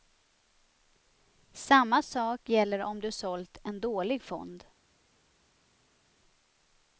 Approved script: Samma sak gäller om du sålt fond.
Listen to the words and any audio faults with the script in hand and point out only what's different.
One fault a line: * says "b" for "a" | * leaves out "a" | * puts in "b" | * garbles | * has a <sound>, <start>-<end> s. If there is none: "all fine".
* puts in "en dålig"